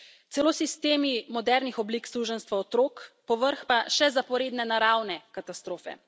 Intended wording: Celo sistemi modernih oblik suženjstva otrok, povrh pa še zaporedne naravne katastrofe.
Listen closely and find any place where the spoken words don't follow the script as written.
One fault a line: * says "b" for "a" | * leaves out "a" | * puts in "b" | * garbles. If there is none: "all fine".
all fine